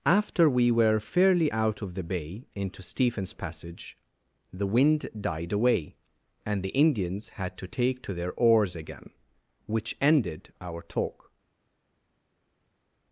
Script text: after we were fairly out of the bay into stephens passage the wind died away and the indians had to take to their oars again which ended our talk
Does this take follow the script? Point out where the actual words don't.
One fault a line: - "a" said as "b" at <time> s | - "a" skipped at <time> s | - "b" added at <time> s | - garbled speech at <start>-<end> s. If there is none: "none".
none